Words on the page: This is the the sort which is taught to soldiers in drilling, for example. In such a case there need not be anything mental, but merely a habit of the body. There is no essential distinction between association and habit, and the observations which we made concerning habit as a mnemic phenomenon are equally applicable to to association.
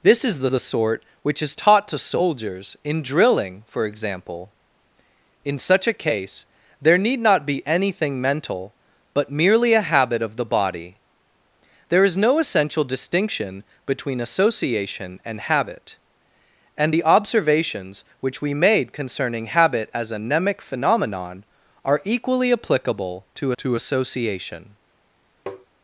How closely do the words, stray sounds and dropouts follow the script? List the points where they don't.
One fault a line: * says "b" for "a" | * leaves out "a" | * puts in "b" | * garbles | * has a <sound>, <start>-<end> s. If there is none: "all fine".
* has a tap, 25.5-25.7 s